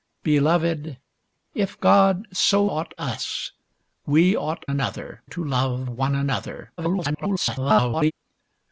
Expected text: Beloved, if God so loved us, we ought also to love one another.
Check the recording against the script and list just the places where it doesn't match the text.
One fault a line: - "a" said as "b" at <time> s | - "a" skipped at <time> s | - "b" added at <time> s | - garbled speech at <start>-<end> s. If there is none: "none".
- "loved" said as "ought" at 2.6 s
- "also" said as "another" at 4.6 s
- garbled speech at 6.8-8.1 s